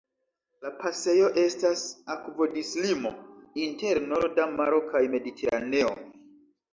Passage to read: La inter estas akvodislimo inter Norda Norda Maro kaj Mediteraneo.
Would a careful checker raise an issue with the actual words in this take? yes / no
yes